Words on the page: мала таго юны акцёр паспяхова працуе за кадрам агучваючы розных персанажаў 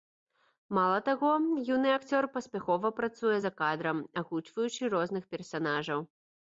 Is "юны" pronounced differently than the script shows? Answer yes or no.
no